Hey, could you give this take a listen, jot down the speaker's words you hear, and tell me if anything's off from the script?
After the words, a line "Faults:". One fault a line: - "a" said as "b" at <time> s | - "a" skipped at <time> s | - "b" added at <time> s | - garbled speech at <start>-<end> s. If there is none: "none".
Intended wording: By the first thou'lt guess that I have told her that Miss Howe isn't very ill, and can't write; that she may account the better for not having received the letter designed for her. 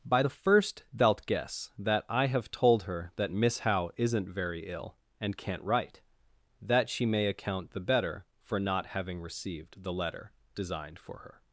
By the first thou'lt guess that I have told her that Miss Howe isn't very ill, and can't write; that she may account the better for not having received the letter designed for her.
Faults:
none